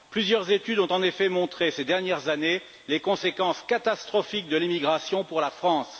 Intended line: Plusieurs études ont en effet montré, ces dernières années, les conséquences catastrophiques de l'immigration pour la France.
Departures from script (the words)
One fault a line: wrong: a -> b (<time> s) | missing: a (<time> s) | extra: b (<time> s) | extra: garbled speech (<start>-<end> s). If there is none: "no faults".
no faults